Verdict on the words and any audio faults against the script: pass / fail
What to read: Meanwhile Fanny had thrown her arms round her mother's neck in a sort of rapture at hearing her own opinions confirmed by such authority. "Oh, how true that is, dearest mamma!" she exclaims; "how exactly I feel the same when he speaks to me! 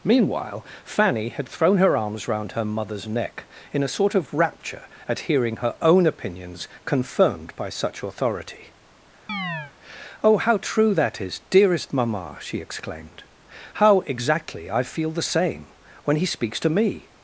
fail